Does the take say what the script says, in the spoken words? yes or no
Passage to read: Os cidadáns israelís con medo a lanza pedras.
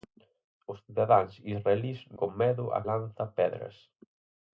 yes